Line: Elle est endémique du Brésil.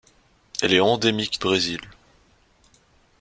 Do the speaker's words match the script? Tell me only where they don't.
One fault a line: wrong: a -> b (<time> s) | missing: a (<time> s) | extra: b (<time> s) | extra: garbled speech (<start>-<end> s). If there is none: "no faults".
missing: du (1.4 s)